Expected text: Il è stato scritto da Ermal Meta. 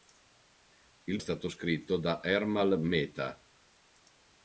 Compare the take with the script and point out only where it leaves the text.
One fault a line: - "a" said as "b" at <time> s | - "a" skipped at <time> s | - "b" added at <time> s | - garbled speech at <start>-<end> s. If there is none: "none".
none